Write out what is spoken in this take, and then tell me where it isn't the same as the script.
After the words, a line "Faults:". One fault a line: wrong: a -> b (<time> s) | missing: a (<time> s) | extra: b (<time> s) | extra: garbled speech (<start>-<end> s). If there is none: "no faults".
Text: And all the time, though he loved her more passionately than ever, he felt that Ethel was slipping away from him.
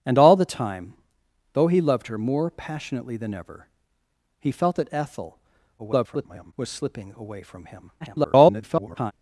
And all the time, though he loved her more passionately than ever, he felt that Ethel [garbled] was slipping away from him. [garbled]
Faults:
extra: garbled speech (5.8-6.5 s)
extra: garbled speech (8.0-9.1 s)